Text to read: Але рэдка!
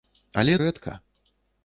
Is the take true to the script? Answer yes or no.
yes